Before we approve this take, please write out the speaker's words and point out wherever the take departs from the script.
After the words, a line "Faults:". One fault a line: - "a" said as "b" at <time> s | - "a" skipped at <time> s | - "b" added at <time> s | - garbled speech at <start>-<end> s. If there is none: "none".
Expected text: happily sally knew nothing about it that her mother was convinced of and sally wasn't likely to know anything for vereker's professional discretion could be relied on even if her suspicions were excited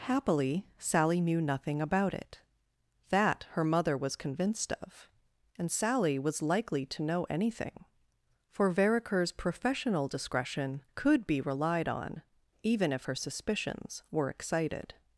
happily sally knew nothing about it that her mother was convinced of and sally was likely to know anything for vereker's professional discretion could be relied on even if her suspicions were excited
Faults:
- "wasn't" said as "was" at 6.2 s